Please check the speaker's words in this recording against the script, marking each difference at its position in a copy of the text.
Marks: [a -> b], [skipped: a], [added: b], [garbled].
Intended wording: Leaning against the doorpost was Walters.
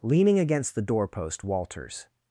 Leaning against the doorpost [skipped: was] Walters.